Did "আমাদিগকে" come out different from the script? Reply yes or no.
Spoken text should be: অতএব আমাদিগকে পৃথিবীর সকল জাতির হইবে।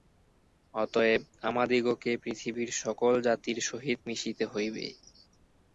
no